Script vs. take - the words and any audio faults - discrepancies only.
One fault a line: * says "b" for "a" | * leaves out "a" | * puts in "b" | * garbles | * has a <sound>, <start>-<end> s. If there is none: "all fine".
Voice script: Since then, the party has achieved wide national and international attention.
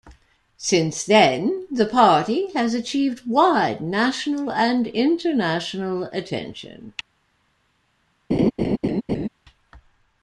* has a laugh, 8.3-9.3 s